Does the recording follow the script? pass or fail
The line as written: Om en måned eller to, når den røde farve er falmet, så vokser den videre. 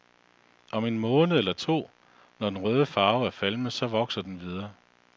pass